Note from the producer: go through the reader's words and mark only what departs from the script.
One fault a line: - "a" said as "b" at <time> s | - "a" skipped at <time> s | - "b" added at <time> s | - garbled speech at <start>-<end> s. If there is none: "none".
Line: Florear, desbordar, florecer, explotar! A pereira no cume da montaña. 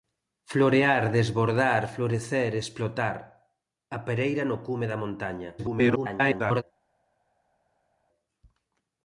- garbled speech at 5.6-6.6 s